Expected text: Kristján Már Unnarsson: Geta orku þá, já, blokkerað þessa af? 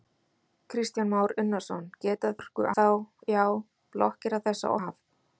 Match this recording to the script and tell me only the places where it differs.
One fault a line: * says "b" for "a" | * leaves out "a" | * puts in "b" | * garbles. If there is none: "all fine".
all fine